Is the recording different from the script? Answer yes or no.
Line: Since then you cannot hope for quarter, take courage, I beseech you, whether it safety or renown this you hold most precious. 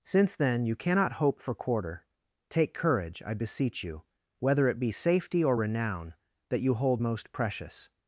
yes